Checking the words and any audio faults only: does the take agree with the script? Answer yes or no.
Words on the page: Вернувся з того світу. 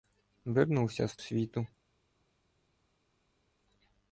no